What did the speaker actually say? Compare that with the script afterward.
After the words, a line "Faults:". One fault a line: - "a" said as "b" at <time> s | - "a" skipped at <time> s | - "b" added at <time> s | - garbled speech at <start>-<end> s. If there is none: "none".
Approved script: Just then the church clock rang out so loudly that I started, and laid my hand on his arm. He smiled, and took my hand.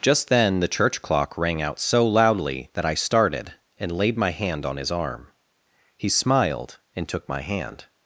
Just then the church clock rang out so loudly that I started, and laid my hand on his arm. He smiled, and took my hand.
Faults:
none